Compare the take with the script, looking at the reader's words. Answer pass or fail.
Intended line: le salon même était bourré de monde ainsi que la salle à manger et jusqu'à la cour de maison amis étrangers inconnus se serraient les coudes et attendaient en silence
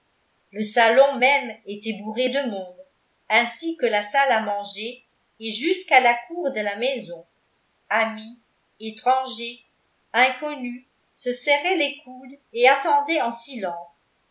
fail